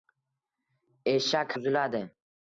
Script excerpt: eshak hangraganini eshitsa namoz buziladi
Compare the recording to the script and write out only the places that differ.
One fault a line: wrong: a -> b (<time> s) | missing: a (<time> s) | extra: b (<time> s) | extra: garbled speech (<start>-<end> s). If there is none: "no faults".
missing: hangraganini eshitsa namoz (1.6 s)